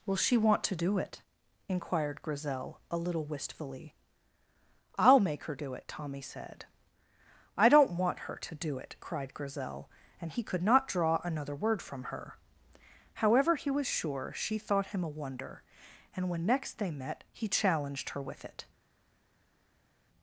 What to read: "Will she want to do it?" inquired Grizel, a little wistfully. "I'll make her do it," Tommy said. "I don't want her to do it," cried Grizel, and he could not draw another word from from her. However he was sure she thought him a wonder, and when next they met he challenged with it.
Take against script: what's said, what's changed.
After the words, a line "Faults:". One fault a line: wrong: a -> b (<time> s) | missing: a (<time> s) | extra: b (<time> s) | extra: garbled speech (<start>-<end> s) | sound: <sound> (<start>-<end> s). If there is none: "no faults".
"Will she want to do it?" inquired Grizel, a little wistfully. "I'll make her do it," Tommy said. "I don't want her to do it," cried Grizel, and he could not draw another word from her. However he was sure she thought him a wonder, and when next they met he challenged her with it.
Faults:
missing: from (12.1 s)
extra: her (18.1 s)